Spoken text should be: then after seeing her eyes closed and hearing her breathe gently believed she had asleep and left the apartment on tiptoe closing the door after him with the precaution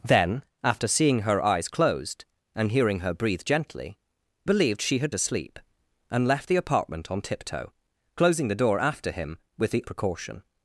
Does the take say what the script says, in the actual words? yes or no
yes